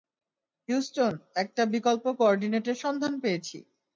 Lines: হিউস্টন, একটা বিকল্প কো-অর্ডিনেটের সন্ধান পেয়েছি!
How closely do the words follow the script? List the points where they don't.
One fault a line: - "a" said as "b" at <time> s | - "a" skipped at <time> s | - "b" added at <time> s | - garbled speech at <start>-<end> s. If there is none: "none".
none